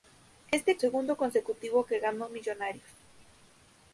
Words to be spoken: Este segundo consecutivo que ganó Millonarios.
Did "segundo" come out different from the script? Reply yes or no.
no